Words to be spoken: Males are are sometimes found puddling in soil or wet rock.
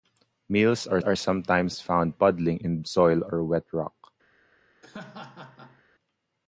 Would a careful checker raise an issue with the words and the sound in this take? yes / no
yes